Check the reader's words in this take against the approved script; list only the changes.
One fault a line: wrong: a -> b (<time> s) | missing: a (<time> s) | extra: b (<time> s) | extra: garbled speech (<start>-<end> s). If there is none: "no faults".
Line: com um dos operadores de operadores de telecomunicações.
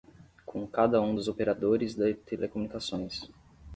extra: cada (0.7 s)
missing: operadores de (2.1 s)